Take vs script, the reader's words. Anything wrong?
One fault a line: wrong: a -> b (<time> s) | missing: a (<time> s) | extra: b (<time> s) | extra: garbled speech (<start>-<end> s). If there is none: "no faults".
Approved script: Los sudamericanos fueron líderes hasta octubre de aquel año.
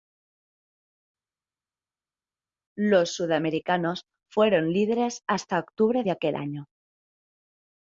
no faults